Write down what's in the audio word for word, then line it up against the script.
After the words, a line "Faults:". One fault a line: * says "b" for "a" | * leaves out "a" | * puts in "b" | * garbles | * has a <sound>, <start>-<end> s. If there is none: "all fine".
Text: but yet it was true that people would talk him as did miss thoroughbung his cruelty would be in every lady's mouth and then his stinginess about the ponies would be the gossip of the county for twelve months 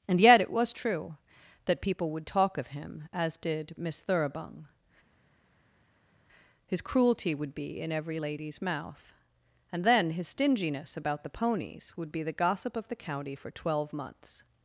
and yet it was true that people would talk of him as did miss thoroughbung his cruelty would be in every lady's mouth and then his stinginess about the ponies would be the gossip of the county for twelve months
Faults:
* says "and" for "but"
* puts in "of"